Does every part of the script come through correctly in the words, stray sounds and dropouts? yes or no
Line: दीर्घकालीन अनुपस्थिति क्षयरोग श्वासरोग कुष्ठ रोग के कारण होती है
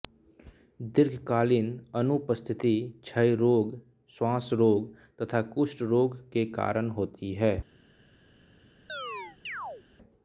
no